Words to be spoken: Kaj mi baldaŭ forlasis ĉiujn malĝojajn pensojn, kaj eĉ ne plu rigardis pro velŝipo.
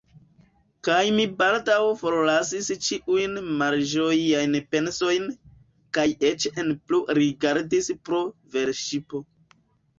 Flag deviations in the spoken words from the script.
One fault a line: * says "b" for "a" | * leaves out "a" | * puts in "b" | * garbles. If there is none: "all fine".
all fine